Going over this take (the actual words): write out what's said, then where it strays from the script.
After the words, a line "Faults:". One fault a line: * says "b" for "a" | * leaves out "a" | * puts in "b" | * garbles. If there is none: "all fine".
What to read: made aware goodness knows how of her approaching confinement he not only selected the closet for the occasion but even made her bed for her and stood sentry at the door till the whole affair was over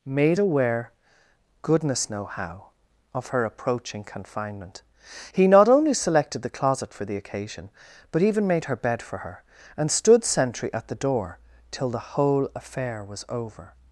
made aware goodness know how of her approaching confinement he not only selected the closet for the occasion but even made her bed for her and stood sentry at the door till the whole affair was over
Faults:
* says "know" for "knows"